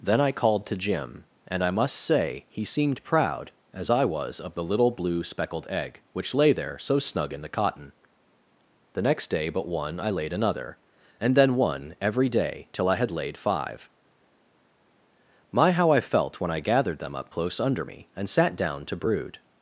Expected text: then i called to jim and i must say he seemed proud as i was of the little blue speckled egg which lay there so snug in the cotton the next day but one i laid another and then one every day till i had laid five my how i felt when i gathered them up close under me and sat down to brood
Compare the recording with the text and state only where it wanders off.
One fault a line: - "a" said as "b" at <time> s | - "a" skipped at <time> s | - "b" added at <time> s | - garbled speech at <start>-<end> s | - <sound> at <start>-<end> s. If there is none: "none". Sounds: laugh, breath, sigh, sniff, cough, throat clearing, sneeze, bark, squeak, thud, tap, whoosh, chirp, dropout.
none